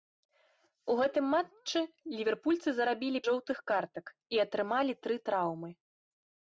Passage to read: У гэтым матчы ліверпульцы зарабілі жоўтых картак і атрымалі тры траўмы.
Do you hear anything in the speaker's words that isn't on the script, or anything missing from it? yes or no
no